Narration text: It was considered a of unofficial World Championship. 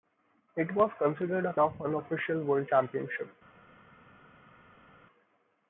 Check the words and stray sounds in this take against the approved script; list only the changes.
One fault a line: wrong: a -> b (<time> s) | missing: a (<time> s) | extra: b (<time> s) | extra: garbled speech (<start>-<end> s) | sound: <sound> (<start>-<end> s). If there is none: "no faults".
no faults